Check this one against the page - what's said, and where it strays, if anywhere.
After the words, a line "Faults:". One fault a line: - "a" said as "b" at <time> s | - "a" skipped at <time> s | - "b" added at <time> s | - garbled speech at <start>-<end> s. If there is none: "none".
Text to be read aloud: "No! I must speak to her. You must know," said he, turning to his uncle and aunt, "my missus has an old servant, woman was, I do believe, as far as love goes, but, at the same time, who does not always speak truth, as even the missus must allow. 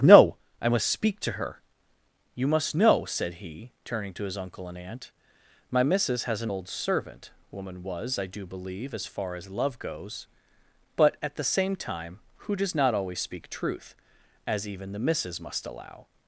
"No! I must speak to her. You must know," said he, turning to his uncle and aunt, "my missus has an old servant, woman was, I do believe, as far as love goes, but, at the same time, who does not always speak truth, as even the missus must allow.
Faults:
none